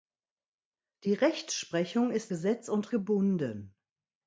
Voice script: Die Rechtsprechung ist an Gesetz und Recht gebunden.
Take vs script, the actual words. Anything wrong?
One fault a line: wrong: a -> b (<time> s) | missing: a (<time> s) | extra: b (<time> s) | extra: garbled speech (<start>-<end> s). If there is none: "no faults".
missing: an (2.3 s)
missing: Recht (2.9 s)